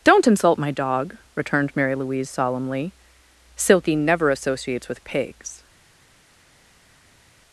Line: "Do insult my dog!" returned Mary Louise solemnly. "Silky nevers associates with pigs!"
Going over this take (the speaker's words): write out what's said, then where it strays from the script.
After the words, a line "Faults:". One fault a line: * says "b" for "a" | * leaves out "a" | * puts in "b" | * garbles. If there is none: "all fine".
"Don't insult my dog!" returned Mary Louise solemnly. "Silky never associates with pigs!"
Faults:
* says "Don't" for "Do"
* says "never" for "nevers"